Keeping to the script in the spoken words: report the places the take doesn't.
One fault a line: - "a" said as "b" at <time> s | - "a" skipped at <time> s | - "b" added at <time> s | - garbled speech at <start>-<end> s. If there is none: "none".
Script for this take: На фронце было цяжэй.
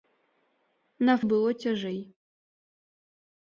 - "фронце" skipped at 1.1 s